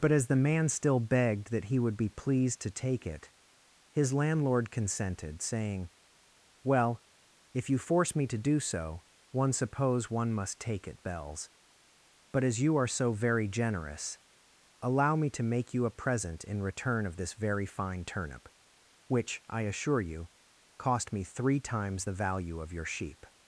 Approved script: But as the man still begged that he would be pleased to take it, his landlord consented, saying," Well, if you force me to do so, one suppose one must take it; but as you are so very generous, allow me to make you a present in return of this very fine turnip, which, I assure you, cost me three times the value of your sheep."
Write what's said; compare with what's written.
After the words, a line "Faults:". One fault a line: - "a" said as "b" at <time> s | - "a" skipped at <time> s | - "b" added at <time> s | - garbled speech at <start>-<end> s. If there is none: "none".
But as the man still begged that he would be pleased to take it, his landlord consented, saying," Well, if you force me to do so, one suppose one must take it; bells but as you are so very generous, allow me to make you a present in return of this very fine turnip, which, I assure you, cost me three times the value of your sheep."
Faults:
- "bells" added at 11.0 s